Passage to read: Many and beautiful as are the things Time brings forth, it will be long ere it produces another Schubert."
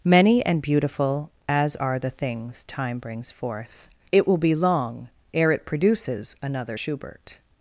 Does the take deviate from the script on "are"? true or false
false